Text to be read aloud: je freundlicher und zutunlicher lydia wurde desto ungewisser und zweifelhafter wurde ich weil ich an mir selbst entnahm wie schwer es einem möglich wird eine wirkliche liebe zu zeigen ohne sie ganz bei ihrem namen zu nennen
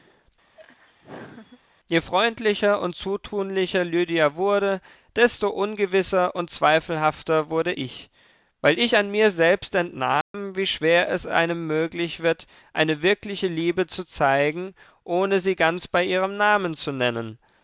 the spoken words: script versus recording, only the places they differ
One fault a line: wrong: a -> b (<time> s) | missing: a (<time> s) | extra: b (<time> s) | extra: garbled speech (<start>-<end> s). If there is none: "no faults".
no faults